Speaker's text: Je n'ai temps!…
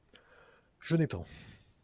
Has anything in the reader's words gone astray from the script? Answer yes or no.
no